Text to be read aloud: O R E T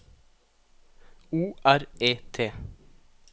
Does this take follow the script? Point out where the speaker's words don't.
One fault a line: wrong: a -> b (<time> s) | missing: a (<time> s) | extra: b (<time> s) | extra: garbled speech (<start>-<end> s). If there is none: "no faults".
no faults